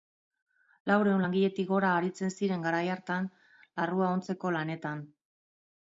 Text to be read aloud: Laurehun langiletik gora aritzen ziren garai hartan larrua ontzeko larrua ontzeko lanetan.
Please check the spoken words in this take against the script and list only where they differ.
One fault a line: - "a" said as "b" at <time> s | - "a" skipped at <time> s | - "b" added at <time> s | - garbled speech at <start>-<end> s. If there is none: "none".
- "larrua ontzeko" skipped at 4.6 s